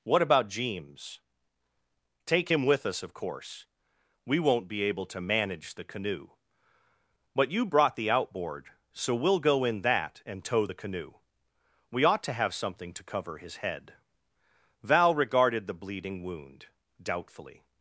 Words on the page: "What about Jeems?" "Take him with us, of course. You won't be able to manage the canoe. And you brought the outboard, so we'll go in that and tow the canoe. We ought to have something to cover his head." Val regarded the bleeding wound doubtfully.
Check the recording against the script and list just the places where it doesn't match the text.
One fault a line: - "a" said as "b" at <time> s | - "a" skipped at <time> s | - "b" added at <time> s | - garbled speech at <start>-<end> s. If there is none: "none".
- "You" said as "We" at 4.2 s
- "And" said as "But" at 7.3 s